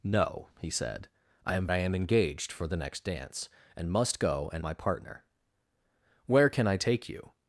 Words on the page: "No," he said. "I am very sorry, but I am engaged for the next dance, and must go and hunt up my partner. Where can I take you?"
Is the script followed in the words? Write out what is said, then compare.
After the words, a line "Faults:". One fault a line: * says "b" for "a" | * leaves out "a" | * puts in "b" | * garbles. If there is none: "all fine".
"No," he said. "I am I am engaged for the next dance, and must go and my partner. Where can I take you?"
Faults:
* leaves out "very sorry but"
* leaves out "hunt up"